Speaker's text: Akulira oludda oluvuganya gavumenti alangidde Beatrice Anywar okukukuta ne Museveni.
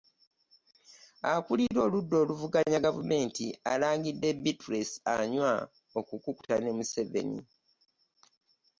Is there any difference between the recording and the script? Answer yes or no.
no